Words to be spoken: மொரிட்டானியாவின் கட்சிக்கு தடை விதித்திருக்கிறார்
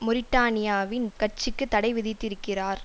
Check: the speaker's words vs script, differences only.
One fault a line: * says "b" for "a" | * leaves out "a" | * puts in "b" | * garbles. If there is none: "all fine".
all fine